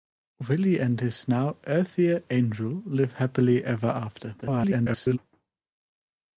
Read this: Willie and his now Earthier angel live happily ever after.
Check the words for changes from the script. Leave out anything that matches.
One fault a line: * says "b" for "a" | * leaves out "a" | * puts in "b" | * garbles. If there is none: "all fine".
* garbles